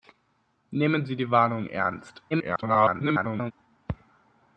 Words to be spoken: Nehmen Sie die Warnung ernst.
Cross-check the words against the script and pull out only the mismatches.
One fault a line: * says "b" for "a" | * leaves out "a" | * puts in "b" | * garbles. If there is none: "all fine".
* garbles